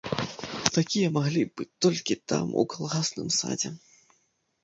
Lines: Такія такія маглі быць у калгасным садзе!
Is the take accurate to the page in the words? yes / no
no